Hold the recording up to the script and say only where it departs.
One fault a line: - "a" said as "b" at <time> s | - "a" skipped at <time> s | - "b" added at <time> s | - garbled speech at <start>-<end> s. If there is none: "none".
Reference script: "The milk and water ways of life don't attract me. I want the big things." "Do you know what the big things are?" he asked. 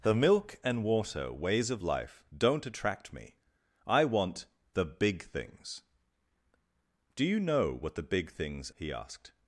- "are" skipped at 8.7 s